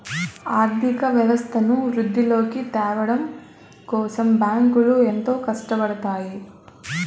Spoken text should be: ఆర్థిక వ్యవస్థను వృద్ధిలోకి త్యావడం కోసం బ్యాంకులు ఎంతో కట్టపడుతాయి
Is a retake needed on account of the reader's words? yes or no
no